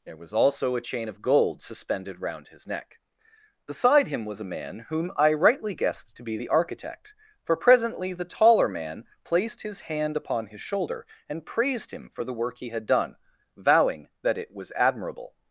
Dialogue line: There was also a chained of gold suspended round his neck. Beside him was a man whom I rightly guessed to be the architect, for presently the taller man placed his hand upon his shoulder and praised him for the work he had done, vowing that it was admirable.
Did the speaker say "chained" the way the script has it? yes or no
no